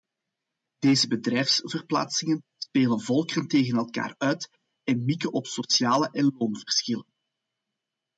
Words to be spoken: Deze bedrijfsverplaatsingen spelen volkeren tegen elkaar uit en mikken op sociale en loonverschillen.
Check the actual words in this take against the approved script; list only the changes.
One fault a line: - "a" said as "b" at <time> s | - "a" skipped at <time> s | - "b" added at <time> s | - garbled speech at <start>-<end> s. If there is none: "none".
none